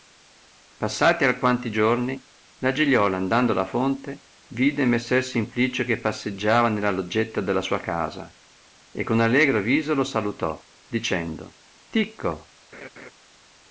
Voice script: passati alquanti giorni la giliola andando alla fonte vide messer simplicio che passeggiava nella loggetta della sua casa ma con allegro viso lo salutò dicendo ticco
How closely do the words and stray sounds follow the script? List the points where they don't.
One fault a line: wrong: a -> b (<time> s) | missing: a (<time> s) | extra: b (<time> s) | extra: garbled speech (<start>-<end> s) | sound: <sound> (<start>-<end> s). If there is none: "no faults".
wrong: ma -> e (8.9 s)
sound: laugh (12.7-13.1 s)